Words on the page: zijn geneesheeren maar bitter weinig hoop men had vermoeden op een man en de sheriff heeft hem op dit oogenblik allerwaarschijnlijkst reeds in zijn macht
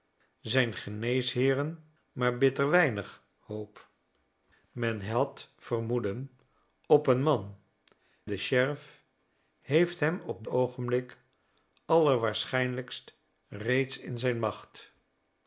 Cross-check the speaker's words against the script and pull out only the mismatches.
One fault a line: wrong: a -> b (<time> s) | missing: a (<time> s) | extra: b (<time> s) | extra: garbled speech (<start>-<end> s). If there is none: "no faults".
missing: en (7.5 s)
missing: dit (10.5 s)